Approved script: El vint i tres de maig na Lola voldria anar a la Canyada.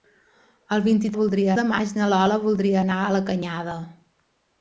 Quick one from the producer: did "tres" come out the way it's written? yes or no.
no